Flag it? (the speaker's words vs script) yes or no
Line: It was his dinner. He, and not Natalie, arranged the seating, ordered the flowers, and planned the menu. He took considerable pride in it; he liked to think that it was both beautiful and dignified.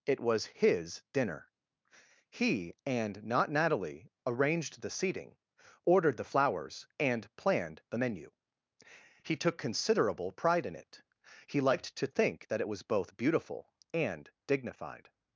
no